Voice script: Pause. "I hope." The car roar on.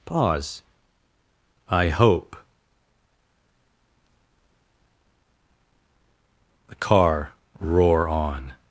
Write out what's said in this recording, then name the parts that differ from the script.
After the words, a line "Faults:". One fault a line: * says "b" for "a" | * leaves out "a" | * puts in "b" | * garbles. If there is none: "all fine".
Pause. "I hope." The car roar on.
Faults:
all fine